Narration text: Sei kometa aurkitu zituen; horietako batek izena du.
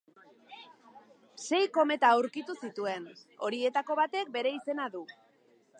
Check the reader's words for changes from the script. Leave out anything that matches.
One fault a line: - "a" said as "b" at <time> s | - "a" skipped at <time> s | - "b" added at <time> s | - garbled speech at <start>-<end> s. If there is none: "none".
- "bere" added at 4.4 s